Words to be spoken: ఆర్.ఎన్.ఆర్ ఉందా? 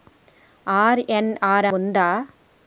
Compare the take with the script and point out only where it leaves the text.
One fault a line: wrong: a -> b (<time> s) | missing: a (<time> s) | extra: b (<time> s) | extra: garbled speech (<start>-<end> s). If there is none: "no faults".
no faults